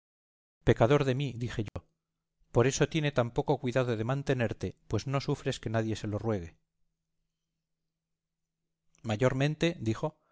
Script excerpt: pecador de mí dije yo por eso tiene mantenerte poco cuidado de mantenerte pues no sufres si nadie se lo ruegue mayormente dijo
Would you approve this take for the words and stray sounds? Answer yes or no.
no